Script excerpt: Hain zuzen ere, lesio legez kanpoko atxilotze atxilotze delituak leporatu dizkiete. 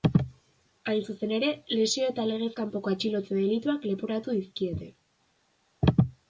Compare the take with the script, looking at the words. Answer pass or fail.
fail